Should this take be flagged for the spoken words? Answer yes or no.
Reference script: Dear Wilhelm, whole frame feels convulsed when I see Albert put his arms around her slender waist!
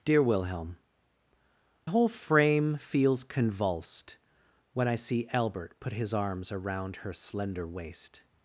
no